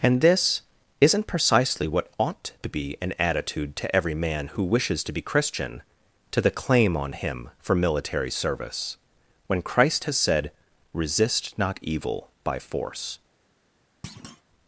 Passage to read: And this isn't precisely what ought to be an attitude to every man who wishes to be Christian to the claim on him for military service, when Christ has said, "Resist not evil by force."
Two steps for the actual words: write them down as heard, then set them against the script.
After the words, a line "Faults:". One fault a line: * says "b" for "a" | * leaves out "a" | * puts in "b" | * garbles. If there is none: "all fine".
And this isn't precisely what ought to be an attitude to every man who wishes to be Christian to the claim on him for military service, when Christ has said, "Resist not evil by force."
Faults:
all fine